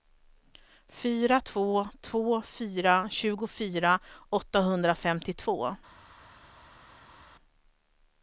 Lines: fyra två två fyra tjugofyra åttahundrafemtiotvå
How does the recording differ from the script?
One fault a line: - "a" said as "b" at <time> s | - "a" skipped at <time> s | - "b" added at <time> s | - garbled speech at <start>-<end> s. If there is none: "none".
none